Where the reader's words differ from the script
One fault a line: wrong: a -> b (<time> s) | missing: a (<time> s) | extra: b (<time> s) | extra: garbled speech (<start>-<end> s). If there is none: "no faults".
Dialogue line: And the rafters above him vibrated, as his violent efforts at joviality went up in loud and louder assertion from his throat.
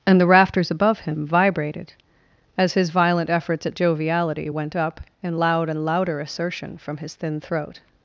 extra: thin (7.1 s)